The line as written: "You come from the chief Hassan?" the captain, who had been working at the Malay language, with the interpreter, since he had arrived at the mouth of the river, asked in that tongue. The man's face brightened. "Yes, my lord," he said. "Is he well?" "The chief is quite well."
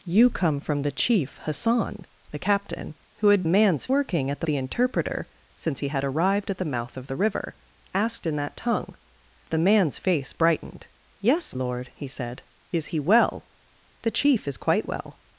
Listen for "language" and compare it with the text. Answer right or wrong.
wrong